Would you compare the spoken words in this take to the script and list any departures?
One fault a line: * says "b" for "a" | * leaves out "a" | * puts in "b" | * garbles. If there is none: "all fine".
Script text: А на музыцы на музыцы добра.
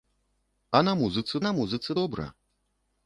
all fine